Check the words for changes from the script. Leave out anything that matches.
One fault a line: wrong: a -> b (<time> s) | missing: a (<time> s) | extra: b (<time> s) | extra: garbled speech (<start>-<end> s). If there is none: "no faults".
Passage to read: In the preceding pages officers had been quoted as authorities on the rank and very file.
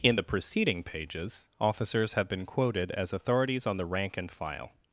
wrong: had -> have (2.1 s)
missing: very (4.3 s)